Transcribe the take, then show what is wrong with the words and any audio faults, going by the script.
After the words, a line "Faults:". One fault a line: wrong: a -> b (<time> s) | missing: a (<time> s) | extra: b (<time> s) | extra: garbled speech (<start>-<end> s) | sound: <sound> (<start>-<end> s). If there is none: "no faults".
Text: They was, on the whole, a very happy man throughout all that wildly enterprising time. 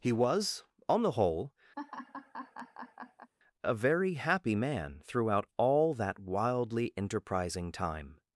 He was, on the whole, a very happy man throughout all that wildly enterprising time.
Faults:
wrong: They -> He (0.0 s)
sound: laugh (1.8-3.3 s)